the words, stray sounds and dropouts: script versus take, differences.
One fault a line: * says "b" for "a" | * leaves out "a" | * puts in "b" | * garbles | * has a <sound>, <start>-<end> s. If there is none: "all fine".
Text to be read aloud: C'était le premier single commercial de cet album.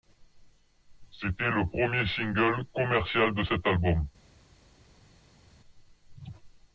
all fine